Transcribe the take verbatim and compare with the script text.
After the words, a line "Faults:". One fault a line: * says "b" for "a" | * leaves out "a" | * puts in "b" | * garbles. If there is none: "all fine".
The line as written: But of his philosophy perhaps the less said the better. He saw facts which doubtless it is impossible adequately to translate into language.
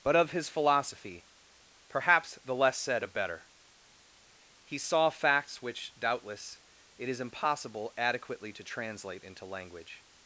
But of his philosophy perhaps the less said a better. He saw facts which doubtless it is impossible adequately to translate into language.
Faults:
* says "a" for "the"